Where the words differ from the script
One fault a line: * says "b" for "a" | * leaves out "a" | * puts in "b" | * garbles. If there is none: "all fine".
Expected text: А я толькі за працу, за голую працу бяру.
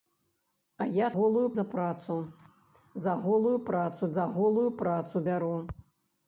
* says "голую" for "толькі"
* puts in "за голую працу"